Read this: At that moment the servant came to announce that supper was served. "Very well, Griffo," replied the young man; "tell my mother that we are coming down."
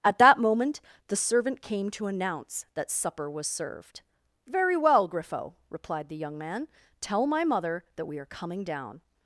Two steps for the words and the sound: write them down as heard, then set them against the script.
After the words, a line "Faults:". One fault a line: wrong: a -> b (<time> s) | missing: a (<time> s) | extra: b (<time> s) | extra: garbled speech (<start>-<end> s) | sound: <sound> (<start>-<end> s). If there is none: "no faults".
At that moment the servant came to announce that supper was served. "Very well, Griffo," replied the young man; "tell my mother that we are coming down."
Faults:
no faults